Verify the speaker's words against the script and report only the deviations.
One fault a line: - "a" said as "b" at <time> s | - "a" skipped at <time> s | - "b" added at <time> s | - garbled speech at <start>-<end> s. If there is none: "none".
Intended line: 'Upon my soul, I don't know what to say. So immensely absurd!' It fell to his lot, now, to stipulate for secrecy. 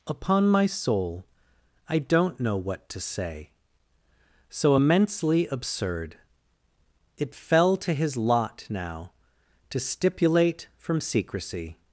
- "for" said as "from" at 10.8 s